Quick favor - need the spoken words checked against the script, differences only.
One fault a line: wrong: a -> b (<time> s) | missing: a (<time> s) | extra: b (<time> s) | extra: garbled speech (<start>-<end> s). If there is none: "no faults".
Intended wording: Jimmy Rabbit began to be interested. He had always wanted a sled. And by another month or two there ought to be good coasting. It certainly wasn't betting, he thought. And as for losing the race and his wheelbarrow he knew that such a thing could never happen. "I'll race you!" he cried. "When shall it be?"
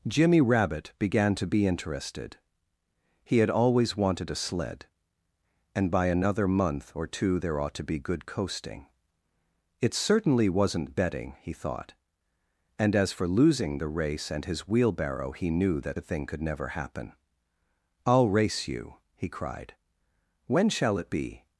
missing: such (16.0 s)